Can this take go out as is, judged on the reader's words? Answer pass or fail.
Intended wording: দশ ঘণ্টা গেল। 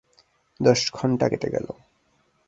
fail